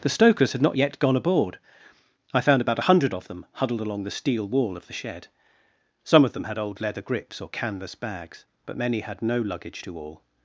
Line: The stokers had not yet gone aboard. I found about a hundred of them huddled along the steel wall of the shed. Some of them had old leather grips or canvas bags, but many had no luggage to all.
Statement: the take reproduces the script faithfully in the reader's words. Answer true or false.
true